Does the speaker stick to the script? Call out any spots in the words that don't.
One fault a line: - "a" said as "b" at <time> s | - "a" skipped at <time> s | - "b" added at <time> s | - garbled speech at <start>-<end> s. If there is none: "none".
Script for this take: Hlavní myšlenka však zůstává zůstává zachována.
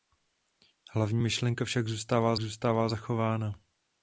none